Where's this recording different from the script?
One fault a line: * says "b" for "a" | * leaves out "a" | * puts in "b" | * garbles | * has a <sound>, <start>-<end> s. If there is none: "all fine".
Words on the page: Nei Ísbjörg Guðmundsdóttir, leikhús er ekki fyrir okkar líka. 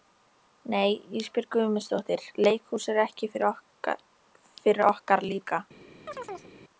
* has a chirp, 6.1-6.5 s